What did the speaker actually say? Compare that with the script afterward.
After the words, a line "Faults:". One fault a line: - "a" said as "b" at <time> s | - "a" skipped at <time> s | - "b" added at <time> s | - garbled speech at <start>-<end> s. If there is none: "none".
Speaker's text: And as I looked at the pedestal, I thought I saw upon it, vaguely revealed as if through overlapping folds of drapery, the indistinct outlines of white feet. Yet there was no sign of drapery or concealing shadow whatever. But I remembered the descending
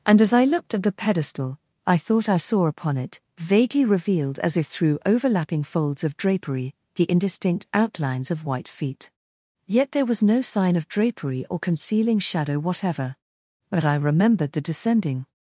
And as I looked at the pedestal, I thought I saw upon it, vaguely revealed as if through overlapping folds of drapery, the indistinct outlines of white feet. Yet there was no sign of drapery or concealing shadow whatever. But I remembered the descending
Faults:
none